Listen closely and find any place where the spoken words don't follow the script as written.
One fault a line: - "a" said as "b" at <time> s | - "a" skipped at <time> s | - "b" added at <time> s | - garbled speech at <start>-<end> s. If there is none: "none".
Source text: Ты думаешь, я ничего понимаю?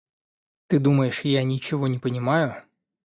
- "не" added at 1.9 s